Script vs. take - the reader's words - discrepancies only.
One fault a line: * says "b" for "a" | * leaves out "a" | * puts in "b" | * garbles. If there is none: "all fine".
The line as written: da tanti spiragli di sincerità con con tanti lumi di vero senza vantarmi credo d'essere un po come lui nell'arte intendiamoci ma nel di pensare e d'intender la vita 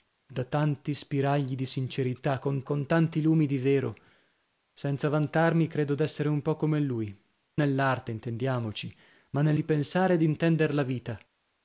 all fine